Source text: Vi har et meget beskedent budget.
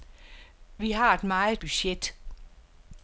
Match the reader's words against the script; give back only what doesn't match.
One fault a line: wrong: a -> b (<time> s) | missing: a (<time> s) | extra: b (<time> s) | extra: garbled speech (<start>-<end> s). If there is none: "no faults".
missing: beskedent (1.6 s)